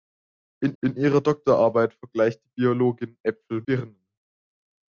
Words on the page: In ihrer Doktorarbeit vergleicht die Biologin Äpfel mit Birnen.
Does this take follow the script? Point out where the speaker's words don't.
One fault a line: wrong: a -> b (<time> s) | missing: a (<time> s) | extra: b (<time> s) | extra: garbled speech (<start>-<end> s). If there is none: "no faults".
extra: in (0.8 s)
missing: mit (3.6 s)